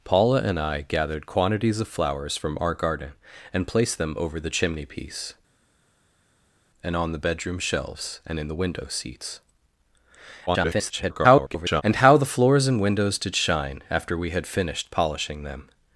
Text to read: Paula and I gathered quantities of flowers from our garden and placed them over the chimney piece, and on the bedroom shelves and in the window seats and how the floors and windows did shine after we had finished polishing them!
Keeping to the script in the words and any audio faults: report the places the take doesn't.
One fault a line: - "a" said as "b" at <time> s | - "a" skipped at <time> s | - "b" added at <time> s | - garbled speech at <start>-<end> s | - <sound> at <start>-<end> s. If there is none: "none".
- garbled speech at 10.5-11.8 s